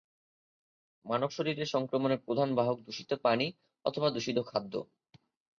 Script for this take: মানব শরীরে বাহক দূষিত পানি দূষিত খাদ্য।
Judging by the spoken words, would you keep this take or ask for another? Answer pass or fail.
fail